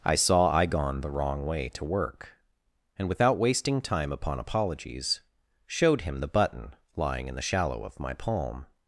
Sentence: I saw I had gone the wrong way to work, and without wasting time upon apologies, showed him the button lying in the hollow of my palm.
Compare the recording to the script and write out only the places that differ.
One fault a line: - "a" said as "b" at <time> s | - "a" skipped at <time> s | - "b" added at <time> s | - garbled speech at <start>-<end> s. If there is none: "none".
- "had" skipped at 0.6 s
- "hollow" said as "shallow" at 7.4 s